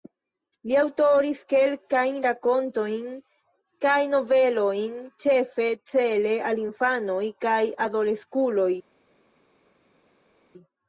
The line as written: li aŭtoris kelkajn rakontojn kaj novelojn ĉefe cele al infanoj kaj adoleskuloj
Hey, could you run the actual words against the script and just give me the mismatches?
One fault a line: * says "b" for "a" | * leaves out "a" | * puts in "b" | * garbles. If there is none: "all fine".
all fine